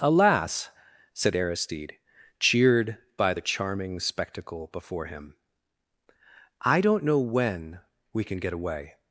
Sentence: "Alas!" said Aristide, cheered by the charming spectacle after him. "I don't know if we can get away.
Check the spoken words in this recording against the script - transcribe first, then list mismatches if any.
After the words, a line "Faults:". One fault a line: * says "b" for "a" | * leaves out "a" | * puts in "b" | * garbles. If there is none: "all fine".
"Alas!" said Aristide, cheered by the charming spectacle before him. "I don't know when we can get away.
Faults:
* says "before" for "after"
* says "when" for "if"